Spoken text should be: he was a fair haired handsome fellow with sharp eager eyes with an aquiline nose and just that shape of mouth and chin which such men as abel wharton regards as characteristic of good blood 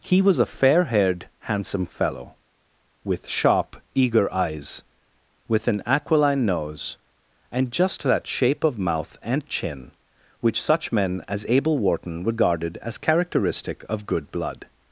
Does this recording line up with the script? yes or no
no